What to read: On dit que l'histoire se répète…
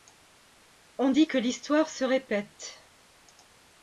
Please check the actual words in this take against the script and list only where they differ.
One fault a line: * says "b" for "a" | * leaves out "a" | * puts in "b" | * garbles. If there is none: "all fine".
all fine